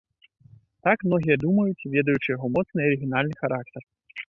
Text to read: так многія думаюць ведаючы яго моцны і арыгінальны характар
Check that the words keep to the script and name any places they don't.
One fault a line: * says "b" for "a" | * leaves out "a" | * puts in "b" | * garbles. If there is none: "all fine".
all fine